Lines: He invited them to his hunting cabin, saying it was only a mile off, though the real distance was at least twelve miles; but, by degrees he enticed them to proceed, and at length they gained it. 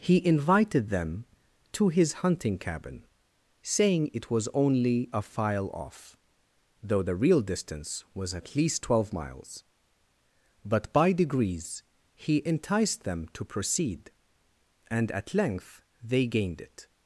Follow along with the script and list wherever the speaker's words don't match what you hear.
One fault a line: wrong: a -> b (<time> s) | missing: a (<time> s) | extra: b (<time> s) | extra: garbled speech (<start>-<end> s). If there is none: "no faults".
wrong: mile -> file (5.2 s)